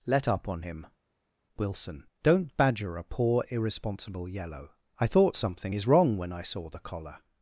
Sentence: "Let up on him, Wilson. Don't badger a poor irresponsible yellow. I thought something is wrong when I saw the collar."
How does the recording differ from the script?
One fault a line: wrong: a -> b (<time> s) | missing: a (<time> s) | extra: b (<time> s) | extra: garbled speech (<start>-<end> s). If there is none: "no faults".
no faults